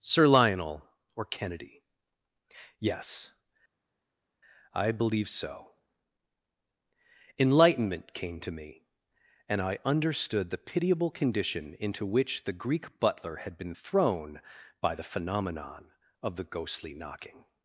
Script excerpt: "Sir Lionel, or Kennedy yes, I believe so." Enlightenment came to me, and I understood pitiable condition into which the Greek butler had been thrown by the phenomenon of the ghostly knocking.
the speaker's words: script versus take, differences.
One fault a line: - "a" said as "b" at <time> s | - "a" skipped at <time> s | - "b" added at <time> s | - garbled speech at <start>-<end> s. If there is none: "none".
- "the" added at 10.5 s